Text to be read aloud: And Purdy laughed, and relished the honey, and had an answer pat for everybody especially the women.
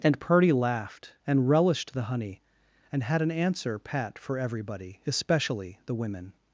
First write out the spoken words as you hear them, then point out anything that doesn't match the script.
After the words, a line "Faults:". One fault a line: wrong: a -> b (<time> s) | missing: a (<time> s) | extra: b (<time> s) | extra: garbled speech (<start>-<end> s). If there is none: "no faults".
And Purdy laughed, and relished the honey, and had an answer pat for everybody especially the women.
Faults:
no faults